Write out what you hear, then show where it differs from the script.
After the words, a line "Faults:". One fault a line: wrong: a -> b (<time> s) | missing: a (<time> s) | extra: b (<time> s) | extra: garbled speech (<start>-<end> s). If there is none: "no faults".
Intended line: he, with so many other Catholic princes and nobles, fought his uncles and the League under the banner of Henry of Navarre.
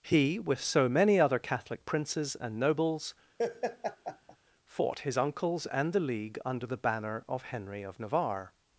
he, with so many other Catholic princes and nobles, fought his uncles and the League under the banner of Henry of Navarre.
Faults:
no faults